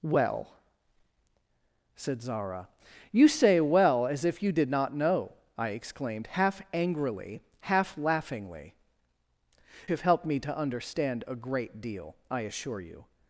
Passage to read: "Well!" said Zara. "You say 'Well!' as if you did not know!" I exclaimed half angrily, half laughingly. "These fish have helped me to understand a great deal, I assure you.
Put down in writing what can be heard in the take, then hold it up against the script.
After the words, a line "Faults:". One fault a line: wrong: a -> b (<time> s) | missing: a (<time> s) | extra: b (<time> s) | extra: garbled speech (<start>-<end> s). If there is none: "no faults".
"Well!" said Zara. "You say 'Well!' as if you did not know!" I exclaimed half angrily, half laughingly. "Have helped me to understand a great deal, I assure you.
Faults:
missing: These fish (8.7 s)